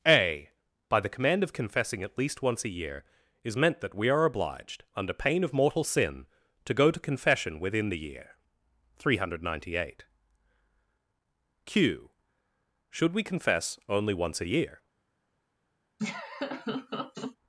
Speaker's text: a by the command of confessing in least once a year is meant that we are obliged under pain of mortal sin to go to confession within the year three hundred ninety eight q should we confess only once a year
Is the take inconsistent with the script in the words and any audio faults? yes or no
yes